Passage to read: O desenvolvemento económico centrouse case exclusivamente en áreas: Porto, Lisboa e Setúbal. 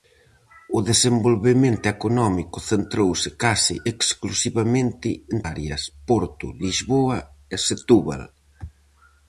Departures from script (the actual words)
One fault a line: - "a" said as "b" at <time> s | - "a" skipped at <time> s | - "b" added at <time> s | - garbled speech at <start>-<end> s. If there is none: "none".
none